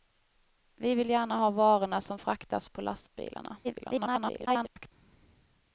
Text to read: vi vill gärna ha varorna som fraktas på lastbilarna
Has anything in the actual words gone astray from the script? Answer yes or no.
yes